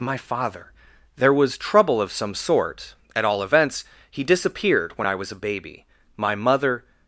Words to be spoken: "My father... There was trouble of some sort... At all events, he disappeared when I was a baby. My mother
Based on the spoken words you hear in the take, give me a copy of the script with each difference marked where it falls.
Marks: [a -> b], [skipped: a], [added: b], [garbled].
"My father... There was trouble of some sort... At all events, he disappeared when I was a baby. My mother